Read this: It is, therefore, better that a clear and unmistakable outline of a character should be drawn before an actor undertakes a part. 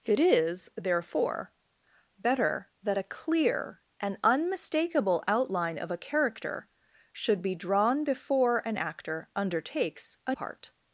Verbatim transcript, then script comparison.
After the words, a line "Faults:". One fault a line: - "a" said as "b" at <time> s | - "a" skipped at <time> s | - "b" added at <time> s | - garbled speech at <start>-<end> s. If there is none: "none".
It is, therefore, better that a clear and unmistakable outline of a character should be drawn before an actor undertakes a part.
Faults:
none